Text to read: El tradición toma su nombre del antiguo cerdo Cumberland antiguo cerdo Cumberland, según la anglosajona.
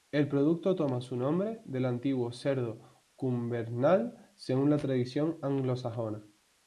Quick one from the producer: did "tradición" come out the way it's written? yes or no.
no